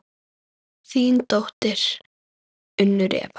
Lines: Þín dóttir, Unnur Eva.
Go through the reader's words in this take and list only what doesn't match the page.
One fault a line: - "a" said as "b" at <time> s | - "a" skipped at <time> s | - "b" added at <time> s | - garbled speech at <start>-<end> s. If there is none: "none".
none